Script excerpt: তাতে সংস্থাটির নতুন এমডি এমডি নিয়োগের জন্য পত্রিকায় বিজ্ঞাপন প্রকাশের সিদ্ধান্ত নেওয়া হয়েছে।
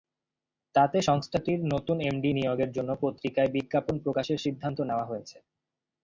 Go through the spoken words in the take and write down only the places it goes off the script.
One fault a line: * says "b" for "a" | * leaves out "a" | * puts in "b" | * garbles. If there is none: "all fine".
* leaves out "এমডি"